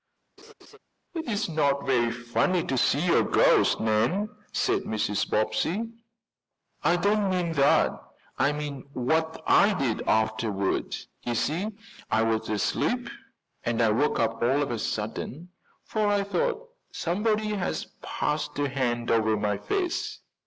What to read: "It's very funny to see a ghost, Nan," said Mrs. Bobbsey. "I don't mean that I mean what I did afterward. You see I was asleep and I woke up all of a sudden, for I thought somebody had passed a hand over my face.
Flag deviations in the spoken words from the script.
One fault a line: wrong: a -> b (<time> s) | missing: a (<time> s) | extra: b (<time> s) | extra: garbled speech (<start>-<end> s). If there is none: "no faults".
extra: not (1.5 s)